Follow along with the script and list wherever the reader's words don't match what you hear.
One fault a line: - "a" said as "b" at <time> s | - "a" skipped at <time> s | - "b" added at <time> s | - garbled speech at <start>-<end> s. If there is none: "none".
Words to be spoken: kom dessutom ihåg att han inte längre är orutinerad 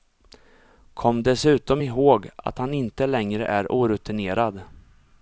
none